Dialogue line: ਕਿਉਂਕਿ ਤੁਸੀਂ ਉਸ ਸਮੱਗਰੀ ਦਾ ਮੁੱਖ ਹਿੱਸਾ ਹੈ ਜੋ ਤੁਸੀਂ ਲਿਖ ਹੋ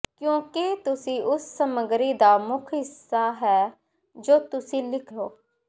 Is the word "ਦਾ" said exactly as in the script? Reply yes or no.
yes